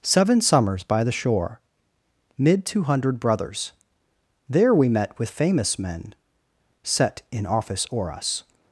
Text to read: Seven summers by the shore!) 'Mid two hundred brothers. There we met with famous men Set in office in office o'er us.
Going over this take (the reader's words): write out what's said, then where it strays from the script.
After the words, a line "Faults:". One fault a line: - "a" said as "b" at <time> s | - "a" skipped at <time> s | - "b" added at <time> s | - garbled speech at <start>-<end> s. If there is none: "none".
Seven summers by the shore!) 'Mid two hundred brothers. There we met with famous men Set in office o'er us.
Faults:
- "in office" skipped at 7.9 s